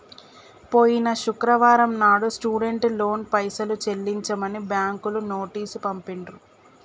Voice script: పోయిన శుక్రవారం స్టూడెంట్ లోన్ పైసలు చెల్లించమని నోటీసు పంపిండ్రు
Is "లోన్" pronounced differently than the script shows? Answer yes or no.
no